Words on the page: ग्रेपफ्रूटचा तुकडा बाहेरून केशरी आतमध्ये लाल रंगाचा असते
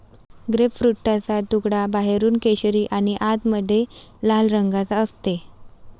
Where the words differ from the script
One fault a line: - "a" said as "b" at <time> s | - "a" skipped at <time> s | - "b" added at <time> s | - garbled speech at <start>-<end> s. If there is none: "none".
- "आणि" added at 2.9 s